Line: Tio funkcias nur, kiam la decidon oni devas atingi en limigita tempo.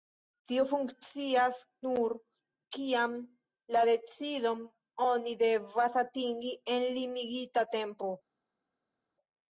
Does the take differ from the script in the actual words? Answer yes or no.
no